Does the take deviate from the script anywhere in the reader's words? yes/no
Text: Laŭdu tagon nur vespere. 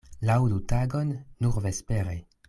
no